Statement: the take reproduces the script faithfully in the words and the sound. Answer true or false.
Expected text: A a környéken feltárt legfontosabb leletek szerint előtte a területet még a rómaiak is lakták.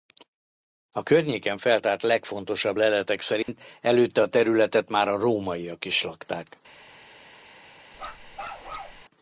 false